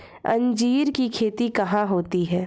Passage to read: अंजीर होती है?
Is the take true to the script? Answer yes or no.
no